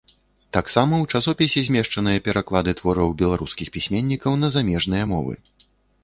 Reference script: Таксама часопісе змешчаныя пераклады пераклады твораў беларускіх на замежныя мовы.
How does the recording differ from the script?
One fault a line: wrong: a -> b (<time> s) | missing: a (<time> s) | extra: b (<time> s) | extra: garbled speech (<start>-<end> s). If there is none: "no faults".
extra: ў (1.0 s)
missing: пераклады (2.7 s)
extra: пісьменнікаў (3.8 s)